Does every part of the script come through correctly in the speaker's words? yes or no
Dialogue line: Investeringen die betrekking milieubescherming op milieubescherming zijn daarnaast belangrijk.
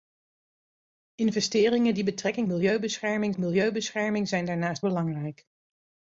yes